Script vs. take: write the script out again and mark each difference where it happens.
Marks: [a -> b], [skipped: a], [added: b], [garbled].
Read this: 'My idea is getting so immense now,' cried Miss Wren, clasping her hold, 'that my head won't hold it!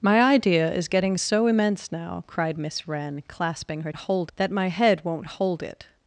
'My idea is getting so immense now,' cried Miss Wren, clasping her hold, 'that my head won't hold it!